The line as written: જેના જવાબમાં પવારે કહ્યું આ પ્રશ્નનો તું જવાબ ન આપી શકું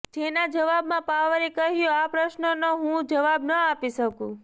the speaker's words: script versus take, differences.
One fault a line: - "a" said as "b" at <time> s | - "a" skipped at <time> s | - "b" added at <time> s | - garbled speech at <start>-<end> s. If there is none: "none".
- "તું" said as "હું" at 2.8 s